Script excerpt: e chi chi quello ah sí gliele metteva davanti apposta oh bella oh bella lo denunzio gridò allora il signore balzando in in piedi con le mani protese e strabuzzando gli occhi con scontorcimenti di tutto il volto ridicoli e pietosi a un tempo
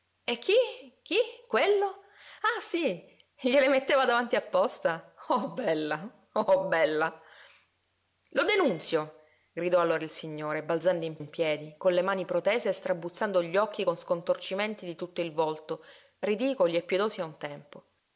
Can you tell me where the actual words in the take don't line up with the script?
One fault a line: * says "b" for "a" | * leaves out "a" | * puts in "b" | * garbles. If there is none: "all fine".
all fine